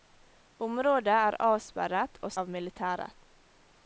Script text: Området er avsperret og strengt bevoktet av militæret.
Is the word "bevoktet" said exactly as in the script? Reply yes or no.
no